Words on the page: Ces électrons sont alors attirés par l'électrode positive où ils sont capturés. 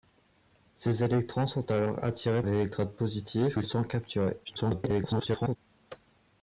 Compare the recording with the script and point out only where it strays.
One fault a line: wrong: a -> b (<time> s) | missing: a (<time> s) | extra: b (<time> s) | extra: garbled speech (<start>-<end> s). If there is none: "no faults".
missing: par (2.4 s)
missing: où (3.6 s)
extra: garbled speech (4.4-5.6 s)